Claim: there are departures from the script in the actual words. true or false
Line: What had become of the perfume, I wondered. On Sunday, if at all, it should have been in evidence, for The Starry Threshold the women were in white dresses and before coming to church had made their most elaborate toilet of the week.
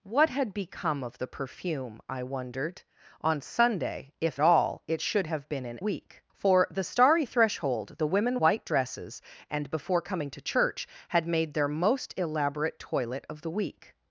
true